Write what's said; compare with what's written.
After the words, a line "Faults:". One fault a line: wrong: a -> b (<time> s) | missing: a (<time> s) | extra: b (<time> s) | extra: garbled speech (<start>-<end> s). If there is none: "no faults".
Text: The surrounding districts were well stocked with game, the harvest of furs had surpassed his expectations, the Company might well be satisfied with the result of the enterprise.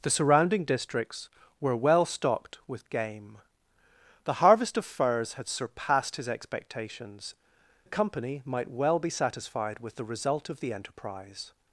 The surrounding districts were well stocked with game, the harvest of furs had surpassed his expectations, the Company might well be satisfied with the result of the enterprise.
Faults:
no faults